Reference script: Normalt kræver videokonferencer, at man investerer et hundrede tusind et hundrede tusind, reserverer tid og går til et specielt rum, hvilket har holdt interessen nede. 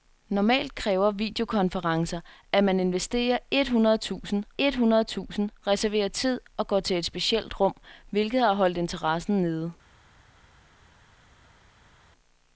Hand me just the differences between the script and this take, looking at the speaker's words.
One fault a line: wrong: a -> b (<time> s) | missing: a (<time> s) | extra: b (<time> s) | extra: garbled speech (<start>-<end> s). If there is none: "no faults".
no faults